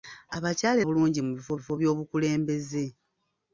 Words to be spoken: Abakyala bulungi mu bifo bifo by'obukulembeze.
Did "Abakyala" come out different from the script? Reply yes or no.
no